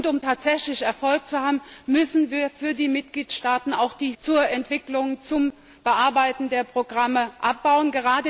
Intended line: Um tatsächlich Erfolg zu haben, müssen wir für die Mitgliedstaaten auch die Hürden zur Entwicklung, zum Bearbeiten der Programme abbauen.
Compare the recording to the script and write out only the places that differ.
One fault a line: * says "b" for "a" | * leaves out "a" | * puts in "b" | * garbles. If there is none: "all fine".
* leaves out "Hürden"